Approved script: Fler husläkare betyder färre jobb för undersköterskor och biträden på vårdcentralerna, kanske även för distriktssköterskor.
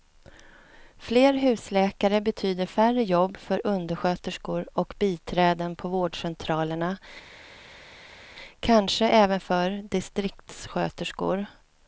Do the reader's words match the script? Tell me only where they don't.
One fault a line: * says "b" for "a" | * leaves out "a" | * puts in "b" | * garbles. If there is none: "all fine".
all fine